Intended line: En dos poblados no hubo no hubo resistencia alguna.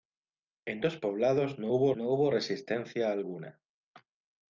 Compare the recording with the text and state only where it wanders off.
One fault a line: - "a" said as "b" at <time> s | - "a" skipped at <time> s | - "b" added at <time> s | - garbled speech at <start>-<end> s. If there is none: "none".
none